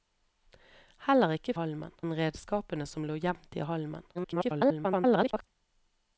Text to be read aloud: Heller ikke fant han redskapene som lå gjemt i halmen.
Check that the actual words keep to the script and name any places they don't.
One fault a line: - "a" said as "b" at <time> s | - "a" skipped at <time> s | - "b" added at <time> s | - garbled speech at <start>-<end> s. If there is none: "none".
- "fant" said as "halmen" at 1.6 s
- garbled speech at 4.1-5.5 s